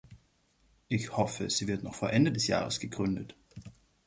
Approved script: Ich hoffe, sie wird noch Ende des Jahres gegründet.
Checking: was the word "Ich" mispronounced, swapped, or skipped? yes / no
no